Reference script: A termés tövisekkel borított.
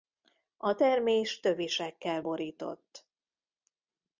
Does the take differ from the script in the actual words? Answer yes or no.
no